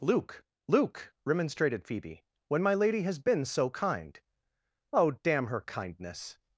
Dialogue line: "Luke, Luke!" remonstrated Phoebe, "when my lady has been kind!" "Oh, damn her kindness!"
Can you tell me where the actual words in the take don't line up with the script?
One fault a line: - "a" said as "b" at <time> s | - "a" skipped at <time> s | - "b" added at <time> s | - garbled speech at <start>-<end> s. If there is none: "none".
- "so" added at 3.4 s